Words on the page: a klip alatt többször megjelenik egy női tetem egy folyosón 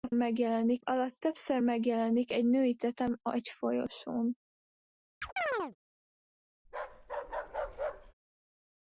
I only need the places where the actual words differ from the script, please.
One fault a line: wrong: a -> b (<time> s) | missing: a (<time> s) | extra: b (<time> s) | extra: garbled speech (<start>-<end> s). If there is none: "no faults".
wrong: klip -> megjelenik (0.1 s)